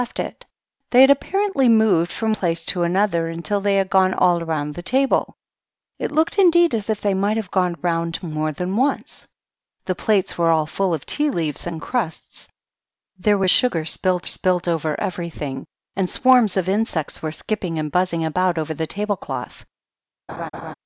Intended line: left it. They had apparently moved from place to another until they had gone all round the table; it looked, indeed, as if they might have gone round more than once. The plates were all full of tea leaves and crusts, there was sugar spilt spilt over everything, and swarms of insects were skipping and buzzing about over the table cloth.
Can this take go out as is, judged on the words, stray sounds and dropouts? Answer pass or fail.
fail